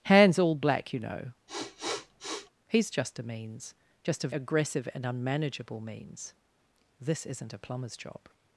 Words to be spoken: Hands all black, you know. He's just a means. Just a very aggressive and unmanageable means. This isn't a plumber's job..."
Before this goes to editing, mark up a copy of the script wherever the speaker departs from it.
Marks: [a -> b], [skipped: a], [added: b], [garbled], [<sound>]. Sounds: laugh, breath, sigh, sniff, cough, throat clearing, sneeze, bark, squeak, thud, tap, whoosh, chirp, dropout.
Hands all black, you know. [sniff] He's just a means. Just a [skipped: very] aggressive and unmanageable means. This isn't a plumber's job..."